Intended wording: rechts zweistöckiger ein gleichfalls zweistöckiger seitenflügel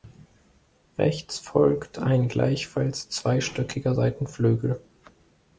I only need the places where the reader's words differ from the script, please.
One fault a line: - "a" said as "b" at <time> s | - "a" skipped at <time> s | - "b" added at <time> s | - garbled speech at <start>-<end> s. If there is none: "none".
- "zweistöckiger" said as "folgt" at 1.4 s